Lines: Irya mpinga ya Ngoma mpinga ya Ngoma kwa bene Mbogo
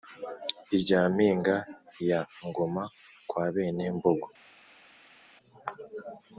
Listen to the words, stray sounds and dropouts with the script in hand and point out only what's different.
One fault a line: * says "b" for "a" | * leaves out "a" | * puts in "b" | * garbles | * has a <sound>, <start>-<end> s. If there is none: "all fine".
* leaves out "mpinga ya Ngoma"